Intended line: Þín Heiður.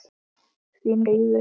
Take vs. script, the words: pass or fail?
pass